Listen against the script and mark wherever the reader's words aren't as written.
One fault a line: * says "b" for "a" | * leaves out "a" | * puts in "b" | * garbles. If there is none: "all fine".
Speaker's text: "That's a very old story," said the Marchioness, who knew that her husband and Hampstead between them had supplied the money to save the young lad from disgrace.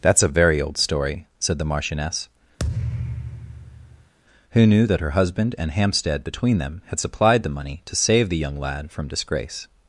all fine